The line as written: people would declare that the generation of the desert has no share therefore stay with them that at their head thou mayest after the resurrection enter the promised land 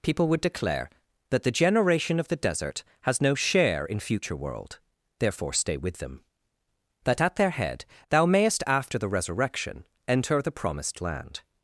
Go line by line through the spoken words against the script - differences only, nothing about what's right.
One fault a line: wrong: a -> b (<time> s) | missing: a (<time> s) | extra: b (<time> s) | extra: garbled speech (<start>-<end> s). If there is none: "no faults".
extra: in future world (3.9 s)